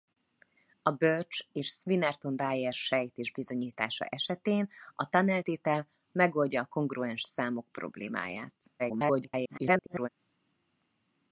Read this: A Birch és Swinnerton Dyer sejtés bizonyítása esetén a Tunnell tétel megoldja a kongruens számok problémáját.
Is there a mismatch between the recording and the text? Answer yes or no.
yes